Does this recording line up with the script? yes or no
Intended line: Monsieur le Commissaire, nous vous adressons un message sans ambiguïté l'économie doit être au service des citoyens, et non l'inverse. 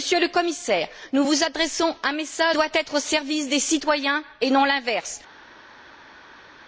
no